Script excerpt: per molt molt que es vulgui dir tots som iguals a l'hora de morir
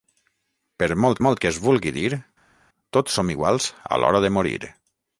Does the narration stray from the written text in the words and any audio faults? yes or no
no